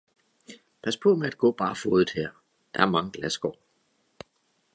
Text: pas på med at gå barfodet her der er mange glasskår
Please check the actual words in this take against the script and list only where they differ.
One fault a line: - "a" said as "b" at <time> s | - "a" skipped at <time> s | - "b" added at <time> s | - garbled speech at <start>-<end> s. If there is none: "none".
none